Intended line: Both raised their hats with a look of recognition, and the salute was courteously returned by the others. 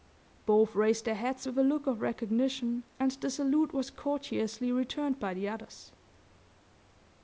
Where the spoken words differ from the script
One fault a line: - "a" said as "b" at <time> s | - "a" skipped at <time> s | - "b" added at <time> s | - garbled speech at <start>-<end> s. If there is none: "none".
none